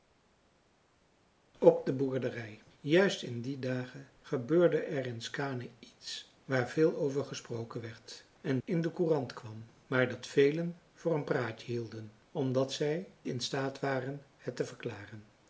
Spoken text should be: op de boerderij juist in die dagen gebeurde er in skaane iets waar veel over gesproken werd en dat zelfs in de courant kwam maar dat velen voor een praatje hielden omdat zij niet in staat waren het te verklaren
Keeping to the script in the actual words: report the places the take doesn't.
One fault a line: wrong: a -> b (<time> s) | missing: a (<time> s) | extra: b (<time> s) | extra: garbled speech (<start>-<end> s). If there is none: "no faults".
missing: dat zelfs (8.6 s)
missing: niet (13.1 s)